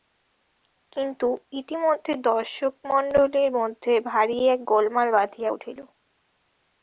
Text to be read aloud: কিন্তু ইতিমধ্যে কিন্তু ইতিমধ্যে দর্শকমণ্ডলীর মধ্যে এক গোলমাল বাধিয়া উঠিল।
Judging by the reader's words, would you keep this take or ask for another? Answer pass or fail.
fail